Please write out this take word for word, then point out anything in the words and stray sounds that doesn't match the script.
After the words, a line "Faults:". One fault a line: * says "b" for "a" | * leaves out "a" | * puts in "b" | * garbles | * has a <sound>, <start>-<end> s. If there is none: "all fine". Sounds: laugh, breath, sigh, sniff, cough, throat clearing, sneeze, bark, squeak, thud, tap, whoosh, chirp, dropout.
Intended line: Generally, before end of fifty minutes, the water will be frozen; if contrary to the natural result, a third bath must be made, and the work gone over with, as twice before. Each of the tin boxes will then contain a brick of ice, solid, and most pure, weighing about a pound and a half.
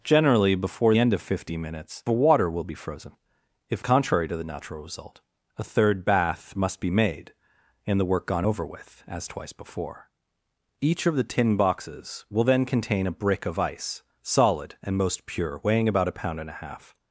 Generally, before end of fifty minutes, the water will be frozen; if contrary to the natural result, a third bath must be made, and the work gone over with, as twice before. Each of the tin boxes will then contain a brick of ice, solid, and most pure, weighing about a pound and a half.
Faults:
all fine